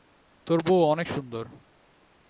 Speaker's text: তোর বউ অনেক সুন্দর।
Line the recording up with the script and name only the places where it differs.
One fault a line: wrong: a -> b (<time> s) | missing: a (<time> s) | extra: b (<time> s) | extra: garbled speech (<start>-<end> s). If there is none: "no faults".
no faults